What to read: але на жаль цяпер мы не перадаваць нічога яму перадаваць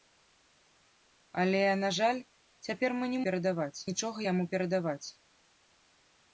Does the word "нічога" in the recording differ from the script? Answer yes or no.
no